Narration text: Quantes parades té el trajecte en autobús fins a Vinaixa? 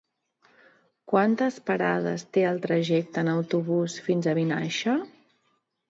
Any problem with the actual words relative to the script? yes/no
no